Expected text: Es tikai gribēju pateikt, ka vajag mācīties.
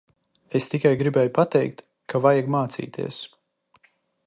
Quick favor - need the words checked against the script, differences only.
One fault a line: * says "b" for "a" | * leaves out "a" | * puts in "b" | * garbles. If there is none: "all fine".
all fine